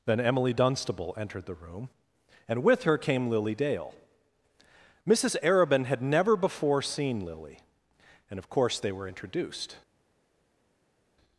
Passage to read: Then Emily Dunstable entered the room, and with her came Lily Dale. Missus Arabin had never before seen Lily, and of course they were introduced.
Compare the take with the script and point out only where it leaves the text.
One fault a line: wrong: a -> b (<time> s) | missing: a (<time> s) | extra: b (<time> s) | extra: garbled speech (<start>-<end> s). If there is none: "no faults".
no faults